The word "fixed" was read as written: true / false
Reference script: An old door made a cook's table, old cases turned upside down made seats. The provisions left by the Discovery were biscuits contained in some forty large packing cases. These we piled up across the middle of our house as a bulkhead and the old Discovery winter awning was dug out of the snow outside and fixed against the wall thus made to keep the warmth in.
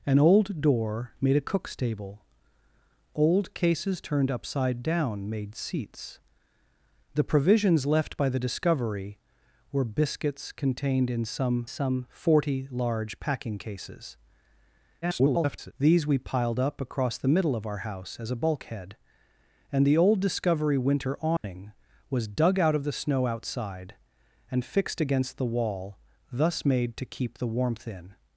true